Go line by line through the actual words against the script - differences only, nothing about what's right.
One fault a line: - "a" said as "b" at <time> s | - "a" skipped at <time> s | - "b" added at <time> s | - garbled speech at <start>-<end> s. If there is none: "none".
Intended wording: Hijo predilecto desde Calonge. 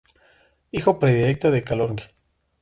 - "desde" said as "de" at 1.5 s